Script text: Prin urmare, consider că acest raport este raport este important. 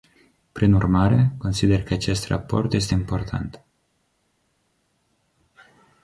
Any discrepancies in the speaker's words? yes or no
yes